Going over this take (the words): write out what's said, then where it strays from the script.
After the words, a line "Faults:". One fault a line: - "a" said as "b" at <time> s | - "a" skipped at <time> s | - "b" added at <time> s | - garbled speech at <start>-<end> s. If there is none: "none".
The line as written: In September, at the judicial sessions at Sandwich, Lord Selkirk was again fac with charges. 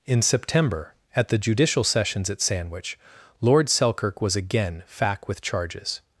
In September, at the judicial sessions at Sandwich, Lord Selkirk was again fac with charges.
Faults:
none